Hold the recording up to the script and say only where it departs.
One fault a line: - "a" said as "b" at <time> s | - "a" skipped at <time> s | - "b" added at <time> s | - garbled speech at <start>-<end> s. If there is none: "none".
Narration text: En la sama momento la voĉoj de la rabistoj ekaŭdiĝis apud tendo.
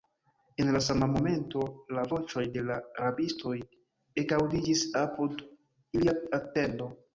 - "ilia" added at 6.0 s